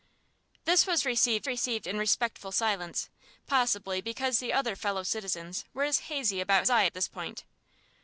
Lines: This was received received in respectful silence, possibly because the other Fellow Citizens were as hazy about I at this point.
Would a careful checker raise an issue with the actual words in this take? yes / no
no